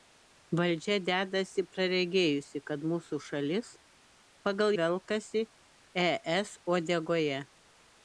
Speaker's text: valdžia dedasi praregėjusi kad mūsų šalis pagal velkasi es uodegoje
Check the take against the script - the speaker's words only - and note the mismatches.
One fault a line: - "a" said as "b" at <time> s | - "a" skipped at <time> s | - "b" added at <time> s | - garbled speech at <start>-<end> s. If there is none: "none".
none